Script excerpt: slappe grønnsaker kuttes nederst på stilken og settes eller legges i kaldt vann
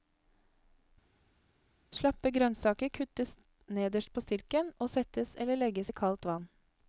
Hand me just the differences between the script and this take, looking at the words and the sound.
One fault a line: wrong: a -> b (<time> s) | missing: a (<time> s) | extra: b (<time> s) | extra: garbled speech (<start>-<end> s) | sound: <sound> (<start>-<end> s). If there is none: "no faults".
no faults